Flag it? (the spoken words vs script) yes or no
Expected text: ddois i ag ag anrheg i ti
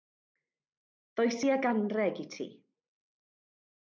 yes